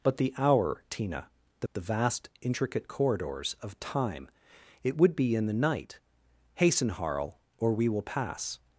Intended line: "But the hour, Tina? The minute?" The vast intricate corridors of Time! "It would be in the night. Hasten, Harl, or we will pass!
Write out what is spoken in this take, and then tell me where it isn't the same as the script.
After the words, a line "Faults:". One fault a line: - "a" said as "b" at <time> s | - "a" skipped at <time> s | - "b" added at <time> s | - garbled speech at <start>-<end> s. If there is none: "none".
"But the hour, Tina? The?" The vast intricate corridors of Time! "It would be in the night. Hasten, Harl, or we will pass!
Faults:
- "minute" skipped at 1.7 s